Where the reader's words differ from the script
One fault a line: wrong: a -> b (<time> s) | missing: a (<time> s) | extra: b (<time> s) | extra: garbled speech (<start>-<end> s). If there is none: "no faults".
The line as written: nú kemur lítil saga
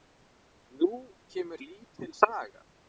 no faults